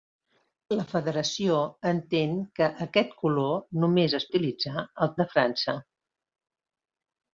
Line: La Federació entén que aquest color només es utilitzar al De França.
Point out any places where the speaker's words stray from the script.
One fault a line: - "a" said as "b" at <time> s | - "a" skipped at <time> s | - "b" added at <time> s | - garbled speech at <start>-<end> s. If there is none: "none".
none